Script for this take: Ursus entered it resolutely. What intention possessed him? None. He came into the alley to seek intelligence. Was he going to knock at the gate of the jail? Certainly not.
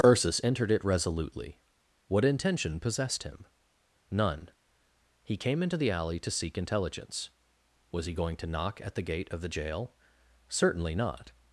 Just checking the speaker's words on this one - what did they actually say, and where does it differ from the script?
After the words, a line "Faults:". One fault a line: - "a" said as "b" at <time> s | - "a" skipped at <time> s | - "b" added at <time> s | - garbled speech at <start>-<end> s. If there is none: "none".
Ursus entered it resolutely. What intention possessed him? None. He came into the alley to seek intelligence. Was he going to knock at the gate of the jail? Certainly not.
Faults:
none